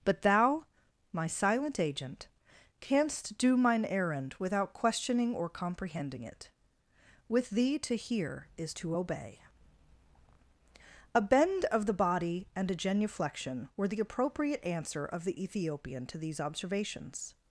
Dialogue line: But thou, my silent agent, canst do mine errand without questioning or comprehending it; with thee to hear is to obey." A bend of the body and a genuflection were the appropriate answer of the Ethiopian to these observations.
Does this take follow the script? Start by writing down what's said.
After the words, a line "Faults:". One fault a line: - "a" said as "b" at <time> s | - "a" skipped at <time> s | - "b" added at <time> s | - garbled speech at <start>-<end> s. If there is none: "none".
But thou, my silent agent, canst do mine errand without questioning or comprehending it; with thee to hear is to obey." A bend of the body and a genuflection were the appropriate answer of the Ethiopian to these observations.
Faults:
none